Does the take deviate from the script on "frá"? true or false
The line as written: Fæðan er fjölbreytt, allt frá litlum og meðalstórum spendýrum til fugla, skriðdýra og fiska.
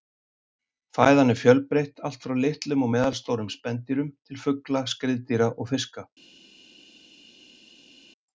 false